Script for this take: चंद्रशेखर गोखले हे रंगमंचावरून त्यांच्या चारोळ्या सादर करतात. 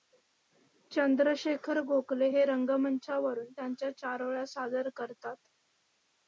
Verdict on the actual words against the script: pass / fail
pass